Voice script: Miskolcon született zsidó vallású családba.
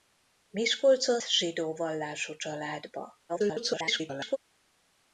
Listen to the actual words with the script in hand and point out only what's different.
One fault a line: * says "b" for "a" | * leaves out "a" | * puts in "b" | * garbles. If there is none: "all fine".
* leaves out "született"
* garbles